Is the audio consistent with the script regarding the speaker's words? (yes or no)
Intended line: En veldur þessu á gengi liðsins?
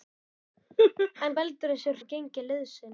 yes